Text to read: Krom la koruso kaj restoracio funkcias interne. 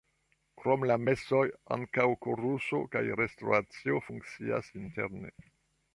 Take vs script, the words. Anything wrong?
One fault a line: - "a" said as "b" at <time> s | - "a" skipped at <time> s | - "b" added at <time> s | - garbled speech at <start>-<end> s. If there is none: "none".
- "mesoj ankaŭ" added at 1.1 s